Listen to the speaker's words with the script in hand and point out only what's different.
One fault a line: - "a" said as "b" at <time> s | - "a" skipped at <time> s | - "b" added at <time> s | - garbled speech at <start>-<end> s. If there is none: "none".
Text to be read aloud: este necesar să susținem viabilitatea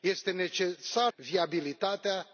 - "să susținem" skipped at 1.1 s